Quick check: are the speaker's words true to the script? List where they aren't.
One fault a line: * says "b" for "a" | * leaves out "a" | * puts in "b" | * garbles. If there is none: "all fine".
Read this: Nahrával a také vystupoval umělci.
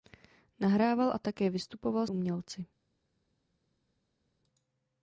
all fine